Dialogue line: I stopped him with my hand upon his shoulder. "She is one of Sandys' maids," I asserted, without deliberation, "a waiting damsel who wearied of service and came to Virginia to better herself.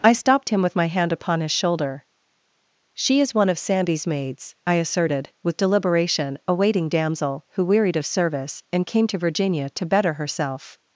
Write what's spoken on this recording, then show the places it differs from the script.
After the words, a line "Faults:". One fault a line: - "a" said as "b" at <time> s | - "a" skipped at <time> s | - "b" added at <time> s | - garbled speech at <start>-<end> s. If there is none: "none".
I stopped him with my hand upon his shoulder. "She is one of Sandys' maids," I asserted, with deliberation, "a waiting damsel who wearied of service and came to Virginia to better herself.
Faults:
- "without" said as "with" at 5.4 s